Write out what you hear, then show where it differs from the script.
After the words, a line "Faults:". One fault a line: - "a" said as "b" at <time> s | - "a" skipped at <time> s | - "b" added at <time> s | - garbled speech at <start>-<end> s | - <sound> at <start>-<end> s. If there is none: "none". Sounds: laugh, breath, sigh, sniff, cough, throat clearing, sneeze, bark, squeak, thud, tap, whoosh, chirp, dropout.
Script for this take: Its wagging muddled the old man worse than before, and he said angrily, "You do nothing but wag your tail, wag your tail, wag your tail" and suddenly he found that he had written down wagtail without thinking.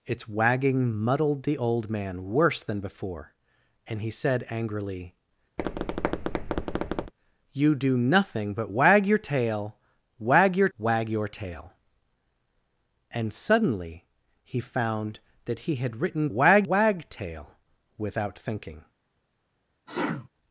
Its wagging muddled the old man worse than before, and he said angrily, "You do nothing but wag your tail, wag your wag your tail" and suddenly he found that he had written wag wagtail without thinking.
Faults:
- tap at 5.6-7.1 s
- "tail" skipped at 10.7 s
- "down" said as "wag" at 16.3 s
- sneeze at 19.9-20.3 s